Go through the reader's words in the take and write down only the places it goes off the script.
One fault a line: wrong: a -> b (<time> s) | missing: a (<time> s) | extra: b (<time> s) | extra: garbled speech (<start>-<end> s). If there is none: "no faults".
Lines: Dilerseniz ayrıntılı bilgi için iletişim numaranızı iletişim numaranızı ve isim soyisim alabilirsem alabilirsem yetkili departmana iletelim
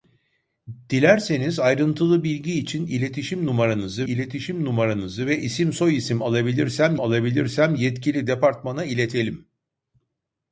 no faults